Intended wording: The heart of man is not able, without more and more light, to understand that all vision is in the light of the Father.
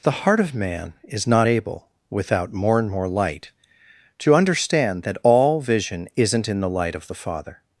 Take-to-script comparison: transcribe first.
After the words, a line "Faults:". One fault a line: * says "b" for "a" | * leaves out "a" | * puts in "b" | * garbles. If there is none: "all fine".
The heart of man is not able, without more and more light, to understand that all vision isn't in the light of the Father.
Faults:
* says "isn't" for "is"